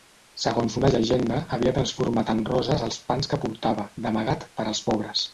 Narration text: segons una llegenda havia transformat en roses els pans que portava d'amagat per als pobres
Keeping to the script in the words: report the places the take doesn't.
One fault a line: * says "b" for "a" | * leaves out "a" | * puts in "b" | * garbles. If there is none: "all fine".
all fine